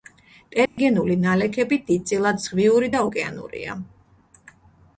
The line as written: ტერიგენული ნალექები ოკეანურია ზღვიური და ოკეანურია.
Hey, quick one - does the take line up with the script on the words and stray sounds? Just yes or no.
no